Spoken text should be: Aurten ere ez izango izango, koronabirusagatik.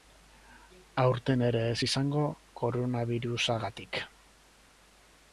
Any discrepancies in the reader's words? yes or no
yes